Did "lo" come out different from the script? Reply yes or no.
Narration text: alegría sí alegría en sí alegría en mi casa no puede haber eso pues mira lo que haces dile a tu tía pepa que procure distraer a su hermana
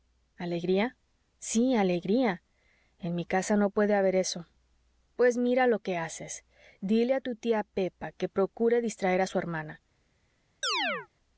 no